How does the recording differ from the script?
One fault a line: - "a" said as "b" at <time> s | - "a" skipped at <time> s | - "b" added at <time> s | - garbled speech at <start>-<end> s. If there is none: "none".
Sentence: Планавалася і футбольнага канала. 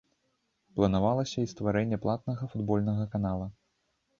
- "стварэнне платнага" added at 1.5 s